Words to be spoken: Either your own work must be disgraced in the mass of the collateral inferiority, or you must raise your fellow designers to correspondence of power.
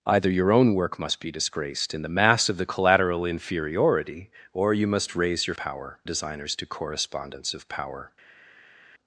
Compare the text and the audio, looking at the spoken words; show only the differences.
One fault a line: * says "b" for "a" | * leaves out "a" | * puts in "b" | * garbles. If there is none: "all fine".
* says "power" for "fellow"